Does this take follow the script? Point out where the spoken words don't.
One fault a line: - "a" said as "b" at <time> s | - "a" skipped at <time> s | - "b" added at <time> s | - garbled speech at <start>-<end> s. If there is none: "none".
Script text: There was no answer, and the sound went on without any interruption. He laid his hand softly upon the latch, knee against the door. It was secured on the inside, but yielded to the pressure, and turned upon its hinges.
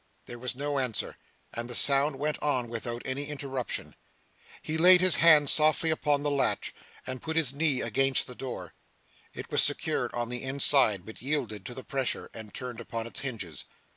- "and put his" added at 7.0 s